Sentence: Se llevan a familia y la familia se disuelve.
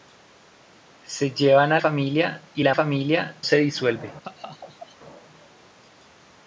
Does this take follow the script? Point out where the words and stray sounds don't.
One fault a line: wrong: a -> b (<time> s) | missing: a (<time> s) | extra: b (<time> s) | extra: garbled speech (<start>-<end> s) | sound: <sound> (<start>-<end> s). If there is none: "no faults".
sound: laugh (4.2-5.0 s)